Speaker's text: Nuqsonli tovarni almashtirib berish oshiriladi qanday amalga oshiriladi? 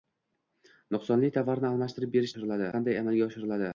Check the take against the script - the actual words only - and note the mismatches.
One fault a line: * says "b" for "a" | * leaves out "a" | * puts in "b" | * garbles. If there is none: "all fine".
all fine